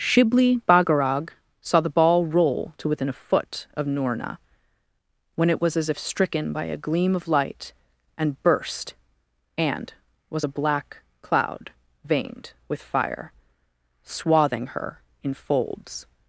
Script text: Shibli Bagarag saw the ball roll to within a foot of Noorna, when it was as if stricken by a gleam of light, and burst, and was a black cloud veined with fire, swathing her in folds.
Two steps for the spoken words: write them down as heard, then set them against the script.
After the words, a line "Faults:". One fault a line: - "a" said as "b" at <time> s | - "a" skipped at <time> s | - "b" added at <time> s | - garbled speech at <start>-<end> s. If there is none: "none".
Shibli Bagarag saw the ball roll to within a foot of Noorna, when it was as if stricken by a gleam of light, and burst, and was a black cloud veined with fire, swathing her in folds.
Faults:
none